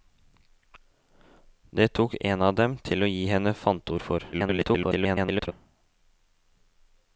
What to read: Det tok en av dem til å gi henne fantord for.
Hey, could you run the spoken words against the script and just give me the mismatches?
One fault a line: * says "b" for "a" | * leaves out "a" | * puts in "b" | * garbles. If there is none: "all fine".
* garbles